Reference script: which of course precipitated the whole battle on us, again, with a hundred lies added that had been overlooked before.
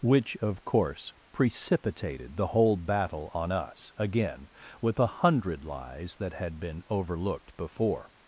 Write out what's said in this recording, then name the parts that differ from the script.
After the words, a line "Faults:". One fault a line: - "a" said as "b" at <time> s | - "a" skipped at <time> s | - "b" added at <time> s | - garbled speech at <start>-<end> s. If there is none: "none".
which of course precipitated the whole battle on us, again, with a hundred lies that had been overlooked before.
Faults:
- "added" skipped at 6.1 s